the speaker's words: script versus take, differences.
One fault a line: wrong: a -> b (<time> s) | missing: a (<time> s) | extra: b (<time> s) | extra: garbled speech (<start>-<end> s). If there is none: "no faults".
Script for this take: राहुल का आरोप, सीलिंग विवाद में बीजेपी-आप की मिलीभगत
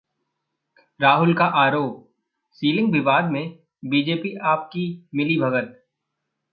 no faults